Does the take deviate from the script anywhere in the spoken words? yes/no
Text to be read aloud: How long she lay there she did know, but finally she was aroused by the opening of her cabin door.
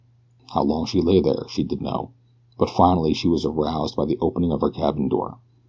no